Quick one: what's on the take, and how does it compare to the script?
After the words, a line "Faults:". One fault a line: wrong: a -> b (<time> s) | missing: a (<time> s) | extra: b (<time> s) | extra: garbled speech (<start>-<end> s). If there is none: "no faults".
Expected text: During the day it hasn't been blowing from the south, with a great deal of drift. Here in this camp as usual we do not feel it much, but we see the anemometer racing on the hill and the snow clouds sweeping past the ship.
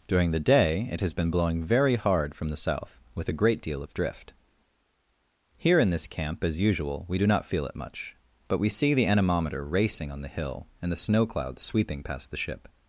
During the day it has been blowing very hard from the south, with a great deal of drift. Here in this camp as usual we do not feel it much, but we see the anemometer racing on the hill and the snow clouds sweeping past the ship.
Faults:
wrong: hasn't -> has (1.0 s)
extra: very hard (1.6 s)